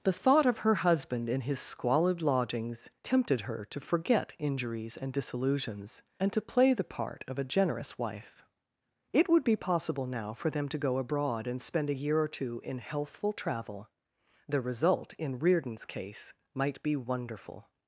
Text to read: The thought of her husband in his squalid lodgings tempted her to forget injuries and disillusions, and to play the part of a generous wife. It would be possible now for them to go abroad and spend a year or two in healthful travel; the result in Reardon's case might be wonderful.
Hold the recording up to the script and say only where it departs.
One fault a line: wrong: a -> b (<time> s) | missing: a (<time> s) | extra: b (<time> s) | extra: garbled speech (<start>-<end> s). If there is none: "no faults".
no faults